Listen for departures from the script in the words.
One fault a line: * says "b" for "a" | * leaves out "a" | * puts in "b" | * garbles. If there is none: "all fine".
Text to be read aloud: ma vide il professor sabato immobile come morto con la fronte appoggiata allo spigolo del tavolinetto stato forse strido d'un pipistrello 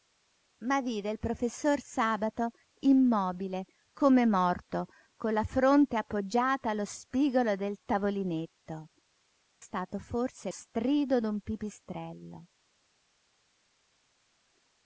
all fine